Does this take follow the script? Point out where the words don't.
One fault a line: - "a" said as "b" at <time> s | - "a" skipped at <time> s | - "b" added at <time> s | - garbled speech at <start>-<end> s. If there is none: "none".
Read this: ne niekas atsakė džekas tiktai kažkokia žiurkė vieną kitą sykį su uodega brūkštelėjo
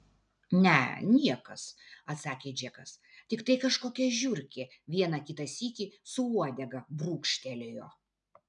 none